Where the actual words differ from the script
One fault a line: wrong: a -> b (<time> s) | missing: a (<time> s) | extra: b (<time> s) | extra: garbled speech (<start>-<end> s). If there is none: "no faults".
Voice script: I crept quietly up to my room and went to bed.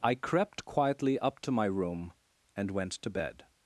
no faults